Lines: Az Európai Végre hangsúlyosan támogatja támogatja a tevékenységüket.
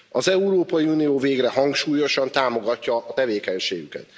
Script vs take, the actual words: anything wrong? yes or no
yes